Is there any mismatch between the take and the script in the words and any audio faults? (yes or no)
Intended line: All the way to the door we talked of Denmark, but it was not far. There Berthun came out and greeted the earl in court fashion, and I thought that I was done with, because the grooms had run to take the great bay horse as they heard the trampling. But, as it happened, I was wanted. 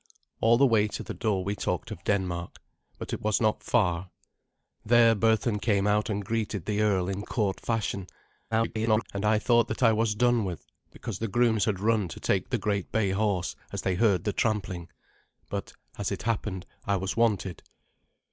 yes